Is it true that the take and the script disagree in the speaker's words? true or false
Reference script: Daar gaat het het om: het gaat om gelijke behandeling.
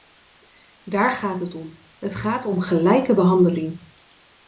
true